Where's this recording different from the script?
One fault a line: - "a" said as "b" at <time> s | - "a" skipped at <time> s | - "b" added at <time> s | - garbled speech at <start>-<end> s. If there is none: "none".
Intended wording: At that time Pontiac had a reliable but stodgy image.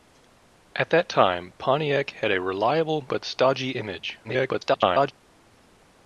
- garbled speech at 4.2-5.1 s